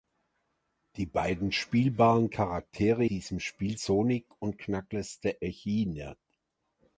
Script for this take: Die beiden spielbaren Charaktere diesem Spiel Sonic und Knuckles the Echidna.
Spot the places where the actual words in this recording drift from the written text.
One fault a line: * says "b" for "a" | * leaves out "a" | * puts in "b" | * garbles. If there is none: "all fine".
all fine